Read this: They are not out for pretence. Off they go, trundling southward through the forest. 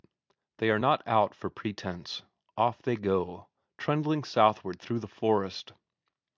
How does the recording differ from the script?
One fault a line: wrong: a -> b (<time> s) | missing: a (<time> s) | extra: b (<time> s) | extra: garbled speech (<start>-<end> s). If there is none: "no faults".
no faults